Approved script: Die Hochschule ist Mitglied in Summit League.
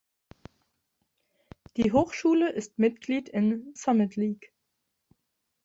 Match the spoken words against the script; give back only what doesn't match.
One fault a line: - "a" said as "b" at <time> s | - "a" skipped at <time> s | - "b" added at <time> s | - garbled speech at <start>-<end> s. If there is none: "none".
none